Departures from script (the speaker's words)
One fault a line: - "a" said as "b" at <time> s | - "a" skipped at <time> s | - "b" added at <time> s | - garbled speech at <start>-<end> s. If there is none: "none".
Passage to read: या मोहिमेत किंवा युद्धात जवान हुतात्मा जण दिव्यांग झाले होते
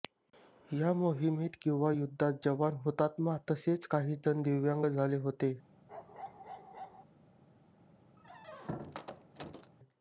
- "तसेच काही" added at 3.5 s